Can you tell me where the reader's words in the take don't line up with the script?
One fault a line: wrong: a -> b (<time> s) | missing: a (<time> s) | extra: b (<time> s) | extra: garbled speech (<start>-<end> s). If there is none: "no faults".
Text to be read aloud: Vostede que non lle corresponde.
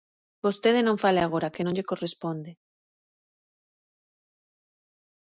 extra: non fale agora (0.9 s)